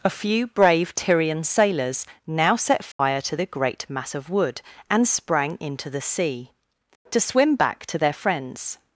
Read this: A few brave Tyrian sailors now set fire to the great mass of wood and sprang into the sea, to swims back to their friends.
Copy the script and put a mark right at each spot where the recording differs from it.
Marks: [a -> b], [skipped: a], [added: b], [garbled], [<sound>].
A few brave Tyrian sailors now set fire [dropout] to the great mass of wood and sprang into the sea, to [swims -> swim] back to their friends.